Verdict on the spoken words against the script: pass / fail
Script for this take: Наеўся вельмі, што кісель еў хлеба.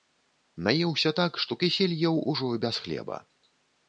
fail